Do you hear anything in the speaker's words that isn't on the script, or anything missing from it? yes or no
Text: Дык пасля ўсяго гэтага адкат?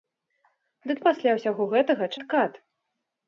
no